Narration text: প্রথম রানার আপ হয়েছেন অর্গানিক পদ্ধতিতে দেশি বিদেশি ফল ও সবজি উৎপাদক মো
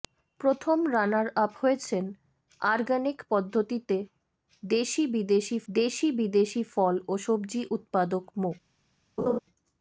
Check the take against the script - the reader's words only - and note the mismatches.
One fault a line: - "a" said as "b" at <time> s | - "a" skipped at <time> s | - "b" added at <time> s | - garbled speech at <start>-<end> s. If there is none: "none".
- "দেশি বিদেশি" added at 5.7 s